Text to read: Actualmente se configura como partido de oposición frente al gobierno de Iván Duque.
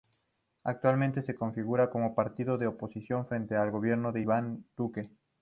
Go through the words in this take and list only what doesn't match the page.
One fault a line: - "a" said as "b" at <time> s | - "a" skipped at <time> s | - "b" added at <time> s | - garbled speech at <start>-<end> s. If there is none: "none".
none